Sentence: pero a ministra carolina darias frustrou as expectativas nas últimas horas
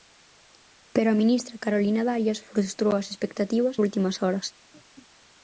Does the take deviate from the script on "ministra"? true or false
false